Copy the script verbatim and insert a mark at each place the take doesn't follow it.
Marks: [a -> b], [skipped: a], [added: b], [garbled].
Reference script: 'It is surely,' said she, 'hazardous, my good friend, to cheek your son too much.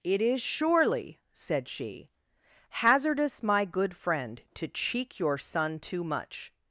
'It is surely,' said she, 'hazardous, my good friend, to cheek your son too much.